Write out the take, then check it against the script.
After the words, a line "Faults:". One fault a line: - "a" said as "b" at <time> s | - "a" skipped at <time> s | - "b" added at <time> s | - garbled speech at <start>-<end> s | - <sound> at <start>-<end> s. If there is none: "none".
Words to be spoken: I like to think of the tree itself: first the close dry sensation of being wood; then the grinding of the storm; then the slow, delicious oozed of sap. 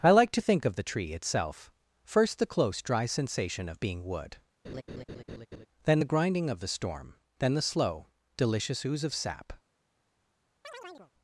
I like to think of the tree itself: first the close dry sensation of being wood; then the grinding of the storm; then the slow, delicious ooze of sap.
Faults:
- laugh at 4.6-5.7 s
- "oozed" said as "ooze" at 8.8 s
- chirp at 10.6-11.1 s